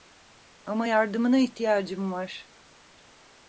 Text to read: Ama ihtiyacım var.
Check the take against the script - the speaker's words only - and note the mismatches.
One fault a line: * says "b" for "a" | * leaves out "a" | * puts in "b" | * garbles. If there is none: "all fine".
* puts in "yardımına"